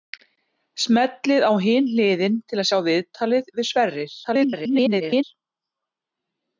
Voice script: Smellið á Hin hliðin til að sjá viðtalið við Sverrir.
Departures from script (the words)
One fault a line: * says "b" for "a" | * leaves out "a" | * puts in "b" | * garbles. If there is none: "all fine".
* garbles